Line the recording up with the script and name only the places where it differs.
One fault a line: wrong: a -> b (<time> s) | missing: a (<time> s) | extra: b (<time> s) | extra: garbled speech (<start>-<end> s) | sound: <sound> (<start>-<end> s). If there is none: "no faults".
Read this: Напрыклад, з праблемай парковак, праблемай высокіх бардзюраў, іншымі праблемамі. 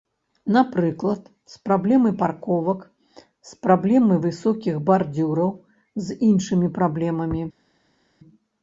extra: з (3.5 s)
extra: з (6.1 s)